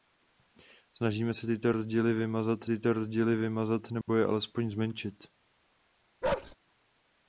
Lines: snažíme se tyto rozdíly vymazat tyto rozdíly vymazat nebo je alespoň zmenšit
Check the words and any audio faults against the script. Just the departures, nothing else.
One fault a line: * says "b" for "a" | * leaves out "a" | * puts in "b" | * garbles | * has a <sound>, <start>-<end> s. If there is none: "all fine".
* has a dropout, 4.0-4.1 s
* has a bark, 6.2-6.6 s